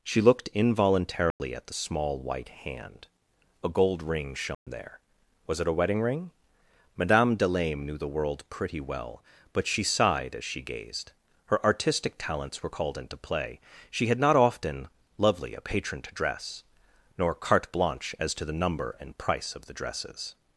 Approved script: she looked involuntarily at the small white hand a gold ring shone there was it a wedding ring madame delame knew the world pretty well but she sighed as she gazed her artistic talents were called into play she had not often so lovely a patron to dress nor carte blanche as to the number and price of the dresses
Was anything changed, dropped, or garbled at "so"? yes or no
yes